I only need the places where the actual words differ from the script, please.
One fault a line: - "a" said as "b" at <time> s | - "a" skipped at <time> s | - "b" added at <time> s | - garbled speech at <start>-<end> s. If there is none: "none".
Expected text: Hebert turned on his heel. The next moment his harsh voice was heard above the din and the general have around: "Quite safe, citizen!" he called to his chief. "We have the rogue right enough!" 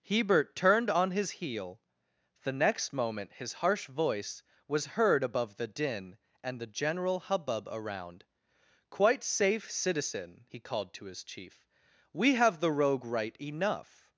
- "have" said as "hubbub" at 7.2 s